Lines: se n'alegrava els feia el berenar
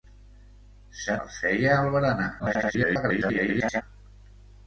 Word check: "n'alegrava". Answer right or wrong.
wrong